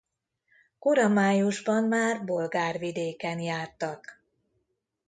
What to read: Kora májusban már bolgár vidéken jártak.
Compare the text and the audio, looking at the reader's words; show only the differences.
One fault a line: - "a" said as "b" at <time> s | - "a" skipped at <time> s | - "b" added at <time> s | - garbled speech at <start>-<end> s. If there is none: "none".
none